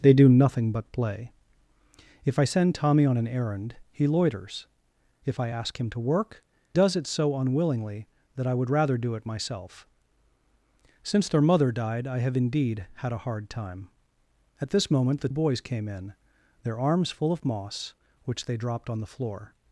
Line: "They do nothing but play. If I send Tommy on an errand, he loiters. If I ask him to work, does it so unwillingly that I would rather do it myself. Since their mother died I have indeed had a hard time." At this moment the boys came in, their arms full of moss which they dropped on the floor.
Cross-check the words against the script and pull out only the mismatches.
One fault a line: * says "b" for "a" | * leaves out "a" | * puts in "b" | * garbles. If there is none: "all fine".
all fine